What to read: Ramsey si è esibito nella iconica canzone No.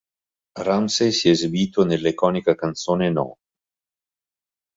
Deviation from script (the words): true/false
false